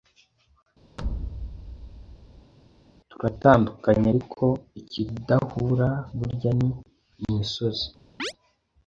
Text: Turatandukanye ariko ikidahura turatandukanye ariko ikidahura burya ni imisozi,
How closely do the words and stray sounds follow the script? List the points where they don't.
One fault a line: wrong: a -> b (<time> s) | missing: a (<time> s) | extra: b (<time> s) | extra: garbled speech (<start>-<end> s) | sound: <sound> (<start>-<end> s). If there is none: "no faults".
sound: thud (1.0-2.5 s)
missing: turatandukanye ariko ikidahura (5.9 s)
sound: chirp (8.2-8.3 s)